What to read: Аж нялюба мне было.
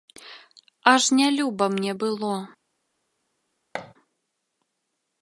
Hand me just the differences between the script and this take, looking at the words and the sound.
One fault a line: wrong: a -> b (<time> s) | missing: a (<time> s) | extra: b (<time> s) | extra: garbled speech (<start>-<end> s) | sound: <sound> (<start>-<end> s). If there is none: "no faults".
sound: thud (3.7-3.9 s)